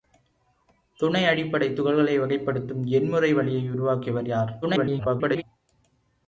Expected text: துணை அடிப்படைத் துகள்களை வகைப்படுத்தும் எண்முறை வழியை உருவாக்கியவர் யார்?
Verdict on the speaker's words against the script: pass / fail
fail